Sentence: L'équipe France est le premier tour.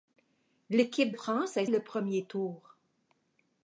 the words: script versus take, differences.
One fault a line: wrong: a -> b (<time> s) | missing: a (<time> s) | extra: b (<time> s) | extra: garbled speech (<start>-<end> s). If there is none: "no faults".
no faults